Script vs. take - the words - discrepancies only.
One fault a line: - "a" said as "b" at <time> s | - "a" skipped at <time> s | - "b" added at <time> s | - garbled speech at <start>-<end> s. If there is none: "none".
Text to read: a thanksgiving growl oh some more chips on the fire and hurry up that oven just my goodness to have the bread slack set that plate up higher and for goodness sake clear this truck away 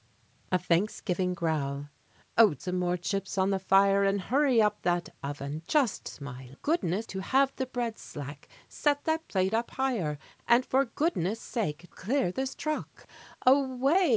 none